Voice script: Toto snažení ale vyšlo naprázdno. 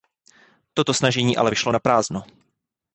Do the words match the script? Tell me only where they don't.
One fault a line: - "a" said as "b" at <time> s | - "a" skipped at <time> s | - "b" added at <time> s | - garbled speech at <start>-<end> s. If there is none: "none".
none